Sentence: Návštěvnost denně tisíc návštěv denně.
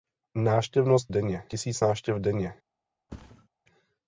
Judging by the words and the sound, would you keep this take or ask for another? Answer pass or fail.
fail